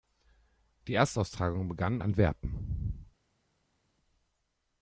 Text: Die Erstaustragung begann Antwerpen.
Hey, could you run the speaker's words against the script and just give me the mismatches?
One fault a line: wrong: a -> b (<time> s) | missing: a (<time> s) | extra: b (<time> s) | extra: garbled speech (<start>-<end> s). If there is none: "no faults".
no faults